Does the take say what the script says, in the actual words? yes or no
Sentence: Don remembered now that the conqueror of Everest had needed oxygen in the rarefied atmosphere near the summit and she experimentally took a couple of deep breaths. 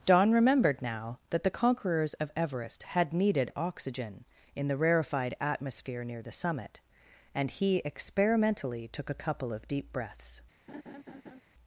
no